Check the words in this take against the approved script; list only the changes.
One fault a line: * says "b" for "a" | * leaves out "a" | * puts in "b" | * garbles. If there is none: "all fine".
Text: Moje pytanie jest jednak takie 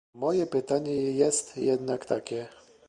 all fine